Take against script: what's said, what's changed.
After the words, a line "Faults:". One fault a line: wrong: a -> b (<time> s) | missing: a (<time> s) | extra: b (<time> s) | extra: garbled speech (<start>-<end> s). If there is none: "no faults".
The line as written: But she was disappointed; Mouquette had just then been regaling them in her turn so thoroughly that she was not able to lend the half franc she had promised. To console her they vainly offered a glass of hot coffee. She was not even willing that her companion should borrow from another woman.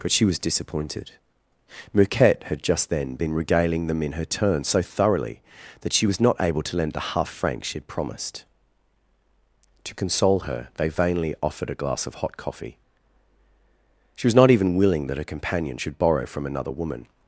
But she was disappointed; Mouquette had just then been regaling them in her turn so thoroughly that she was not able to lend the half franc she had promised. To console her they vainly offered a glass of hot coffee. She was not even willing that her companion should borrow from another woman.
Faults:
no faults